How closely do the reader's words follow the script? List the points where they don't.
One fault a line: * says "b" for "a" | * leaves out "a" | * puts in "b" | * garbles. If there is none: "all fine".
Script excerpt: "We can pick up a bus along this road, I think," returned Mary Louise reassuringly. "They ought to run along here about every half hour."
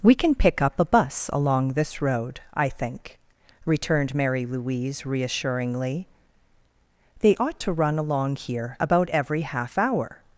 all fine